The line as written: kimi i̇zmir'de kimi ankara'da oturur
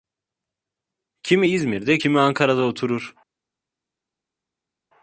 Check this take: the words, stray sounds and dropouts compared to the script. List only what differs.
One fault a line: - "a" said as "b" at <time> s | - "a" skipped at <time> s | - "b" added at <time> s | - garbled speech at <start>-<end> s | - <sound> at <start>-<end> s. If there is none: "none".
none